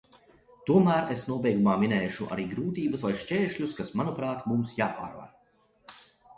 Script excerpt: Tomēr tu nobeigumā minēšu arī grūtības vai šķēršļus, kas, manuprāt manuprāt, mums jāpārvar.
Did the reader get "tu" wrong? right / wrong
wrong